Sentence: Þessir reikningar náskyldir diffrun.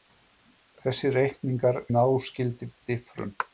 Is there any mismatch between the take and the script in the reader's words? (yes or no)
no